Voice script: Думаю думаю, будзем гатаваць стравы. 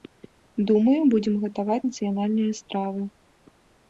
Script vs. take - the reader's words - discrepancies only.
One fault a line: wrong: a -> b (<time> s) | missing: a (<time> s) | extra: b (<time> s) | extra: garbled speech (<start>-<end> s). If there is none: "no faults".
missing: думаю (1.0 s)
extra: нацыянальныя (1.9 s)